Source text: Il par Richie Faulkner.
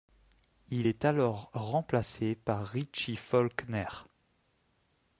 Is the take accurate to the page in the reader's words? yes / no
no